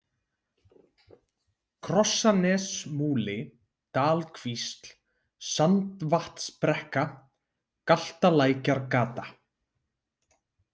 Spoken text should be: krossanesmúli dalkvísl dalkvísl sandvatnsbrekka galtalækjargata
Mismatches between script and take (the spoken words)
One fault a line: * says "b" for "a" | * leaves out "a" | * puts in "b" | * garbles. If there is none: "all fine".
* leaves out "dalkvísl"